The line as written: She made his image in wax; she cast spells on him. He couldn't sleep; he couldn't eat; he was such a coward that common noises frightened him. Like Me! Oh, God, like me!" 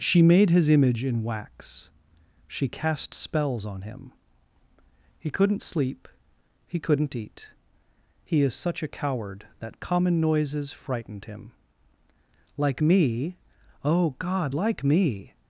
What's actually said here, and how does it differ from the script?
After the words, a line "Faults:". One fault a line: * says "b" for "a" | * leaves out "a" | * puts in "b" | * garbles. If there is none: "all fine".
She made his image in wax; she cast spells on him. He couldn't sleep; he couldn't eat; he is such a coward that common noises frightened him. Like Me! Oh, God, like me!"
Faults:
* says "is" for "was"